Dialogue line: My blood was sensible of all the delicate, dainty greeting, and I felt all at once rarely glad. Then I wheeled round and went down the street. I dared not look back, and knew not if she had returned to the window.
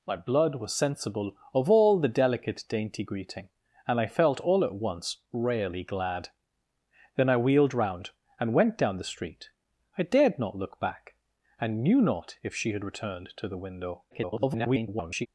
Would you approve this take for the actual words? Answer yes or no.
no